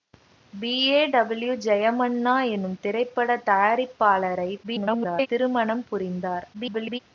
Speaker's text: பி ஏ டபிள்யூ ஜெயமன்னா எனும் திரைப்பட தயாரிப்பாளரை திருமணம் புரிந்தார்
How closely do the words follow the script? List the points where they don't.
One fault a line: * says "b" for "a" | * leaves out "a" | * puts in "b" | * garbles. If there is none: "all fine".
* garbles
* garbles